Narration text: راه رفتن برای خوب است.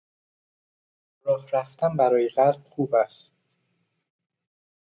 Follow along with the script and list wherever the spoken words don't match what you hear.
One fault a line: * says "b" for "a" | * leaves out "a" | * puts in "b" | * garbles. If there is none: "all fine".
* puts in "قلب"